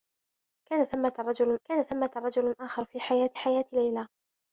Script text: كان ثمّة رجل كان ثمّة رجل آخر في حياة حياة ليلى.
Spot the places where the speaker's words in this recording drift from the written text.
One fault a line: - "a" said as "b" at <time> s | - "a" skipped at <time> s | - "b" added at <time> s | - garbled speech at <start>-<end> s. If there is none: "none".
none